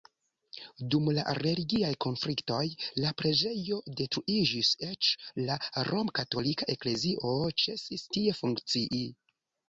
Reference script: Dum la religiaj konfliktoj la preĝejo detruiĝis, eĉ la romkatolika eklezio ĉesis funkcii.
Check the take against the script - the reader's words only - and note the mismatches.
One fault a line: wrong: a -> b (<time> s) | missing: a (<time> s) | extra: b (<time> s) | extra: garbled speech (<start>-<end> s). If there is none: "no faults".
extra: tie (8.2 s)